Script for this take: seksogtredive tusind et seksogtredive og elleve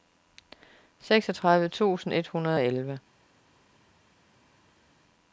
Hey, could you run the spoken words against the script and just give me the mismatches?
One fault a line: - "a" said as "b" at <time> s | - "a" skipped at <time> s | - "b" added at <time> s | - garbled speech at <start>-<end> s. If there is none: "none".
- "seksogtredive" said as "hundrede" at 2.3 s